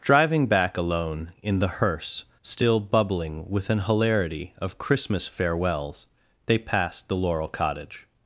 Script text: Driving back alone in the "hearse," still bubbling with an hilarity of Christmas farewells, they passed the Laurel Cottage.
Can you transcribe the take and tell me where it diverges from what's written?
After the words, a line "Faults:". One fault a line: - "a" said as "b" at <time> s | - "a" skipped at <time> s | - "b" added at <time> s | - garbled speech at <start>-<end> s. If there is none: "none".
Driving back alone in the "hearse," still bubbling with an hilarity of Christmas farewells, they passed the Laurel Cottage.
Faults:
none